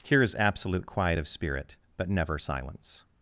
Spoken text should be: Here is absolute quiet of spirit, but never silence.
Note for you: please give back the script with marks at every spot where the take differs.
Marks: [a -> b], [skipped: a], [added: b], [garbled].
Here is absolute quiet of spirit, but never silence.